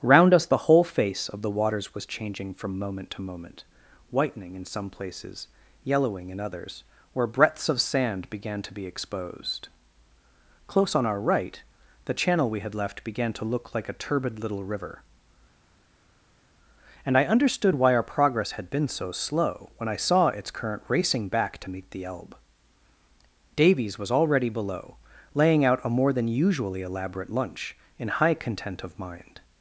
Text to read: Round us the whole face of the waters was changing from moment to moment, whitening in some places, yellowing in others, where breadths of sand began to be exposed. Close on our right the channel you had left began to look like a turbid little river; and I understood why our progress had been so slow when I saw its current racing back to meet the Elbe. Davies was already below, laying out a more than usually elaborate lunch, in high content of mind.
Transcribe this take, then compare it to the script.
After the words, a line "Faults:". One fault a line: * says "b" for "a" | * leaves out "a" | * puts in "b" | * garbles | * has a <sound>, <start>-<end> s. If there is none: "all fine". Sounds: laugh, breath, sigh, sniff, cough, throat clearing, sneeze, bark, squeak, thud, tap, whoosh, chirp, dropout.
Round us the whole face of the waters was changing from moment to moment, whitening in some places, yellowing in others, where breadths of sand began to be exposed. Close on our right the channel we had left began to look like a turbid little river; and I understood why our progress had been so slow when I saw its current racing back to meet the Elbe. Davies was already below, laying out a more than usually elaborate lunch, in high content of mind.
Faults:
* says "we" for "you"